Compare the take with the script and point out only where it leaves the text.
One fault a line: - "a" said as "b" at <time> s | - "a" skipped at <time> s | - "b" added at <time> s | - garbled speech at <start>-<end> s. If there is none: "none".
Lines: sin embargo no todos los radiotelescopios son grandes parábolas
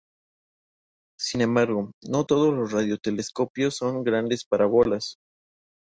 none